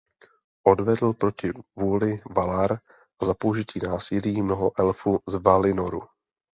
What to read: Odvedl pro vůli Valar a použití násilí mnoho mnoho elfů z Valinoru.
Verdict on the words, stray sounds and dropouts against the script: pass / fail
fail